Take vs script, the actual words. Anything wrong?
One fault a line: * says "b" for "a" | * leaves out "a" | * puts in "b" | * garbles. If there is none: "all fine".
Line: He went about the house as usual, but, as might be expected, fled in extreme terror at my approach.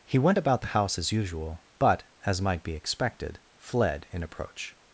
* leaves out "extreme terror at my"